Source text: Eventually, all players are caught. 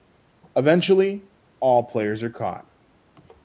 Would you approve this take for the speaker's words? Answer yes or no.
yes